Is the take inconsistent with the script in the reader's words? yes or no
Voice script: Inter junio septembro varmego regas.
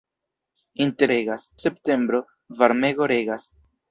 yes